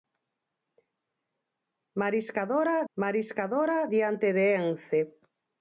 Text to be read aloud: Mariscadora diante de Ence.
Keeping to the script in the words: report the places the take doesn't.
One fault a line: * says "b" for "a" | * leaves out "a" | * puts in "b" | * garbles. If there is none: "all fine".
* puts in "mariscadora"